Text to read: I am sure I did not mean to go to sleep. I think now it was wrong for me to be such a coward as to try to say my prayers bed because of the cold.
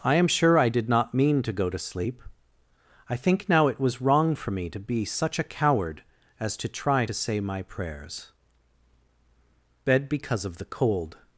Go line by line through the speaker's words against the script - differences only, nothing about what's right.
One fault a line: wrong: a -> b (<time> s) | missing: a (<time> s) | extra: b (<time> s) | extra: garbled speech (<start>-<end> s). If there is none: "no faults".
no faults